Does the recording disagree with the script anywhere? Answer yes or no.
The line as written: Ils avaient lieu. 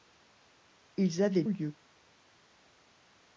no